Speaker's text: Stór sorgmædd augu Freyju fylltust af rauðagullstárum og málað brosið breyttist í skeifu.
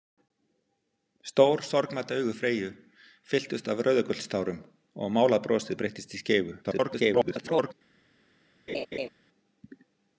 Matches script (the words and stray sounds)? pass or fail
fail